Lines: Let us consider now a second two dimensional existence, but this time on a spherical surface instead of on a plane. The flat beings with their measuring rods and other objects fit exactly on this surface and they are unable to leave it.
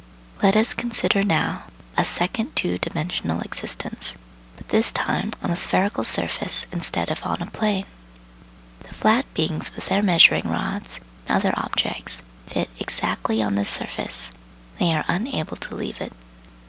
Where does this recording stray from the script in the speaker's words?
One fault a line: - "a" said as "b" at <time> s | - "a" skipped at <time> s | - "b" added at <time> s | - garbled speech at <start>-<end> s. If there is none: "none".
none